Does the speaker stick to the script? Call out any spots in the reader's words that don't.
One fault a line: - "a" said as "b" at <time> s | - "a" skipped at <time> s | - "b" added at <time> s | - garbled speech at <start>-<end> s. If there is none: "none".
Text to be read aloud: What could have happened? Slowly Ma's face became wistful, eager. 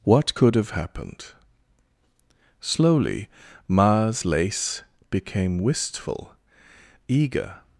- "face" said as "lace" at 4.2 s